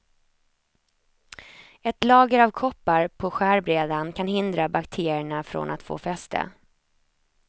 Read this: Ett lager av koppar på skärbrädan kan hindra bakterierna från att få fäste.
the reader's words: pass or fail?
pass